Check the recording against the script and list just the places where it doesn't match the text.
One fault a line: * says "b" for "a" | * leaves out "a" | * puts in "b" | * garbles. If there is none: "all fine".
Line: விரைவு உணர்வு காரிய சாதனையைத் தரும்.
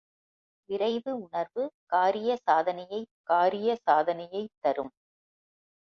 * puts in "காரிய சாதனையைத்"